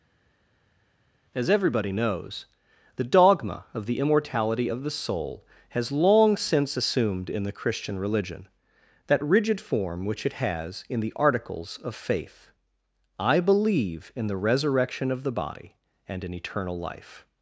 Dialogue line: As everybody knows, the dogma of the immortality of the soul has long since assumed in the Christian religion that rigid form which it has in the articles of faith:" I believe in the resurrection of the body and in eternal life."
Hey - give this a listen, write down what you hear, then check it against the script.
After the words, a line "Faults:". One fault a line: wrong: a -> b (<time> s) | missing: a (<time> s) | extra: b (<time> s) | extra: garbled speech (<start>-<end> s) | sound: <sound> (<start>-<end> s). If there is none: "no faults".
As everybody knows, the dogma of the immortality of the soul has long since assumed in the Christian religion that rigid form which it has in the articles of faith:" I believe in the resurrection of the body and in eternal life."
Faults:
no faults